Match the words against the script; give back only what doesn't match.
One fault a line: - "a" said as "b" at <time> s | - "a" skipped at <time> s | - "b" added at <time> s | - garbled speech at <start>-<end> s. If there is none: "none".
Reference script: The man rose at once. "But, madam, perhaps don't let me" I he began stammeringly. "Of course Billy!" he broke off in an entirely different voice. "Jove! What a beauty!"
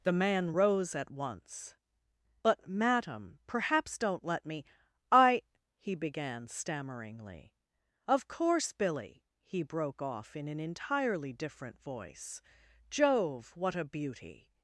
none